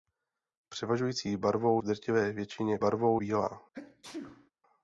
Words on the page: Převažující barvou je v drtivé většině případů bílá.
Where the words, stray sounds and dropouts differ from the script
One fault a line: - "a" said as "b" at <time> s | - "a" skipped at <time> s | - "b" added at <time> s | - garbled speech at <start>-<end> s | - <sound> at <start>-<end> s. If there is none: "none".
- "je" skipped at 1.8 s
- "případů" said as "barvou" at 2.8 s
- sneeze at 3.7-4.5 s